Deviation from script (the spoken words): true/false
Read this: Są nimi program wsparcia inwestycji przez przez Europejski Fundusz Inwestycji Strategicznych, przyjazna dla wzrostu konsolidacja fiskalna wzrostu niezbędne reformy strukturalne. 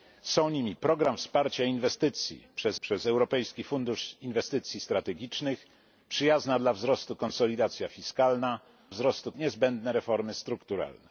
false